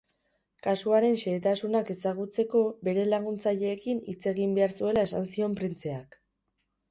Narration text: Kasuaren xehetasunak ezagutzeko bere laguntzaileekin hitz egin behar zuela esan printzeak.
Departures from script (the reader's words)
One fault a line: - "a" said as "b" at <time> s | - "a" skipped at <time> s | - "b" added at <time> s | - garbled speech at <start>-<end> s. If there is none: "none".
- "zion" added at 5.3 s